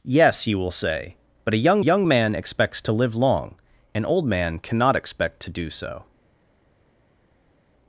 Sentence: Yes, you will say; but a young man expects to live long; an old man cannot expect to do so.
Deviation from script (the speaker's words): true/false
true